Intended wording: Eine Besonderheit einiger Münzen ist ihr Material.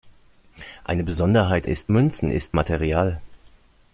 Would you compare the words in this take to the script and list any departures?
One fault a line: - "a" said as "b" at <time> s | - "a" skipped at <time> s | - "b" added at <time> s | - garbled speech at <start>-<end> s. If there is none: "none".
- "einiger" said as "ist" at 1.6 s
- "ihr" skipped at 2.6 s